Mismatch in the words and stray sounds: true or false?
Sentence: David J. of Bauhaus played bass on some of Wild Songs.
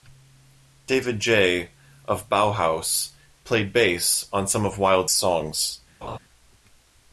true